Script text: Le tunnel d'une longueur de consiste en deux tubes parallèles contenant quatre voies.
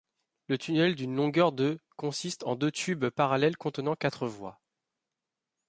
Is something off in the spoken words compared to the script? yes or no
no